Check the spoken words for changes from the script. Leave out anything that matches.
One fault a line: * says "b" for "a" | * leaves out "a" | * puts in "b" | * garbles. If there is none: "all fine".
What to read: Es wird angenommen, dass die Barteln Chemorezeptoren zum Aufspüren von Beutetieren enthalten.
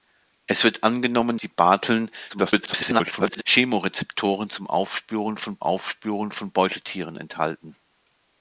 * leaves out "dass"
* garbles
* puts in "Aufspüren von"